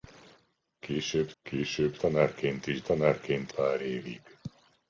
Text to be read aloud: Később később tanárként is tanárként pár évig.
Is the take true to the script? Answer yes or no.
yes